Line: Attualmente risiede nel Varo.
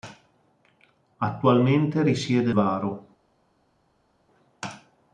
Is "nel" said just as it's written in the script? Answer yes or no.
no